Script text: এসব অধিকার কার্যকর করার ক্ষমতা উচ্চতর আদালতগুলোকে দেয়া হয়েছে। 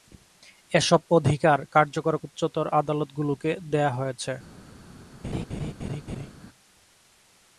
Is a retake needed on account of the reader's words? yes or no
yes